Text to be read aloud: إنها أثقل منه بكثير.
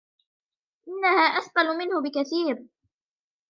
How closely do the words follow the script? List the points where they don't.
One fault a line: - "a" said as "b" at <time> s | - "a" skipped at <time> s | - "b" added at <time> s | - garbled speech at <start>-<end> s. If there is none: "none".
none